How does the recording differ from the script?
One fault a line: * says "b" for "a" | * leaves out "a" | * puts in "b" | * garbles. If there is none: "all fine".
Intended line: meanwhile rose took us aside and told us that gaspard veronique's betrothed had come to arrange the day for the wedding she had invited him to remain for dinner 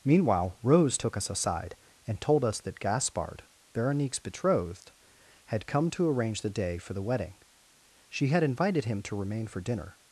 all fine